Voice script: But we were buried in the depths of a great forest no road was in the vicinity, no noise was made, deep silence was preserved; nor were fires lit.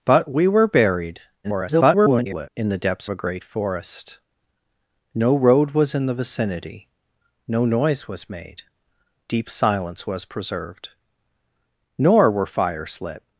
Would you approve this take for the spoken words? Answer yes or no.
no